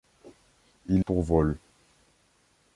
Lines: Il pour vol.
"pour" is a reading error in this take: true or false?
false